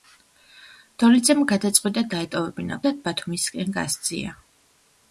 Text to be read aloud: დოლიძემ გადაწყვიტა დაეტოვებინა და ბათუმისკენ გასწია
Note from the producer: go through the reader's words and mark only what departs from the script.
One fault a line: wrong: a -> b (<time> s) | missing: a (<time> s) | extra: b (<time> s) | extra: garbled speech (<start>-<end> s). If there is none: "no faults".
no faults